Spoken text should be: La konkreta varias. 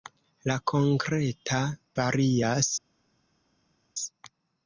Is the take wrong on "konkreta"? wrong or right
right